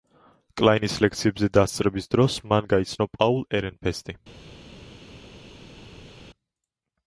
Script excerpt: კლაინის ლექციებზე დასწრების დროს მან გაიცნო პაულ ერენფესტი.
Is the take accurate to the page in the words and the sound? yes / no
yes